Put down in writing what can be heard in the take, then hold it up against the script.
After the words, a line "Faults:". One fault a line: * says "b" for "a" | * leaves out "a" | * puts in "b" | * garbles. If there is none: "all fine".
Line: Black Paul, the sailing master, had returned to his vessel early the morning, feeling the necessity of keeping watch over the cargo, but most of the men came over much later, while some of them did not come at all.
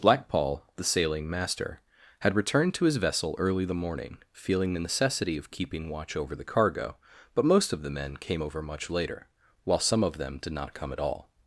Black Paul, the sailing master, had returned to his vessel early the morning, feeling the necessity of keeping watch over the cargo, but most of the men came over much later, while some of them did not come at all.
Faults:
all fine